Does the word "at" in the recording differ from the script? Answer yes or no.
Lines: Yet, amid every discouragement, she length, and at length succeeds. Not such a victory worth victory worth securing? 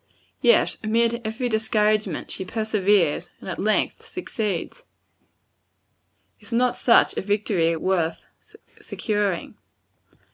no